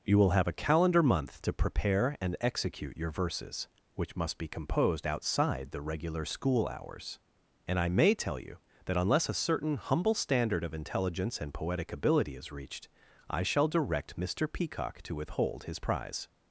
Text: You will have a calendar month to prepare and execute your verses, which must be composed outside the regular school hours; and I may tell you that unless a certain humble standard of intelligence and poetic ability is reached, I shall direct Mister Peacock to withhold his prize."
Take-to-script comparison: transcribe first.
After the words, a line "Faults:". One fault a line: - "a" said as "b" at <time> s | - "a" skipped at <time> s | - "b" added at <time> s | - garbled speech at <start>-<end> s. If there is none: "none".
You will have a calendar month to prepare and execute your verses, which must be composed outside the regular school hours; and I may tell you that unless a certain humble standard of intelligence and poetic ability is reached, I shall direct Mister Peacock to withhold his prize."
Faults:
none